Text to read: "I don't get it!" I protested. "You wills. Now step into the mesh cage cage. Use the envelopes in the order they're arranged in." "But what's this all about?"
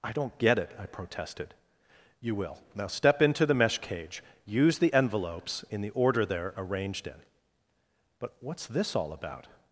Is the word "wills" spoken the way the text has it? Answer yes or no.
no